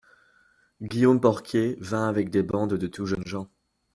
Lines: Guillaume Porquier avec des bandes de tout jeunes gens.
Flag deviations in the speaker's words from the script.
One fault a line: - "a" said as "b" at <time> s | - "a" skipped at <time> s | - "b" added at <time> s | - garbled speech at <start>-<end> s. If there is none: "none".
- "vint" added at 1.8 s